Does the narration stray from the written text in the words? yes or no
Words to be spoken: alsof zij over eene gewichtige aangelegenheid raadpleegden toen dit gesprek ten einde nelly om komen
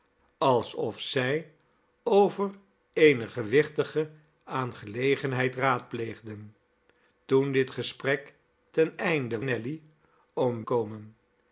no